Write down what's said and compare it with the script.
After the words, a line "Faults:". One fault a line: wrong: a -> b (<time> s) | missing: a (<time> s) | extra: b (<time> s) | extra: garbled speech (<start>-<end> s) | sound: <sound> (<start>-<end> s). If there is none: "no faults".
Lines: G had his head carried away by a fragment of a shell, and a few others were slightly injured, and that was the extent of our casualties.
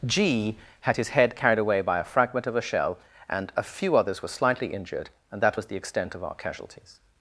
G had his head carried away by a fragment of a shell, and a few others were slightly injured, and that was the extent of our casualties.
Faults:
no faults